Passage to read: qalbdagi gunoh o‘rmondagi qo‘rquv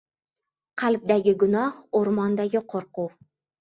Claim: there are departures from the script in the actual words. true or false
false